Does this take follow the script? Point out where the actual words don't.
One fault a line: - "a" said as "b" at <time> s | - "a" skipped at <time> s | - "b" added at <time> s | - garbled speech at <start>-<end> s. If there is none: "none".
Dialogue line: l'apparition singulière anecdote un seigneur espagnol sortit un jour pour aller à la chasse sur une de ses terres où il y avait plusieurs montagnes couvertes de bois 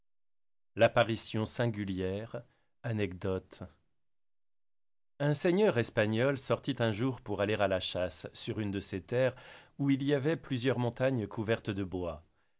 none